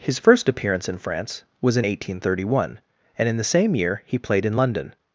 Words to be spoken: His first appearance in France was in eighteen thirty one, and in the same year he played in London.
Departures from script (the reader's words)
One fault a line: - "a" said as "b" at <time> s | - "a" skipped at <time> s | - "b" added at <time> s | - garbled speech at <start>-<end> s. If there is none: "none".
none